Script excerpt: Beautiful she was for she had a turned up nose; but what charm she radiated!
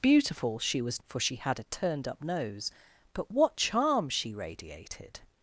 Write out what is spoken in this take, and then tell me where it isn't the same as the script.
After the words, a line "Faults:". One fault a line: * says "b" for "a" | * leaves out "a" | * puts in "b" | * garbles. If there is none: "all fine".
Beautiful she was for she had a turned up nose; but what charm she radiated!
Faults:
all fine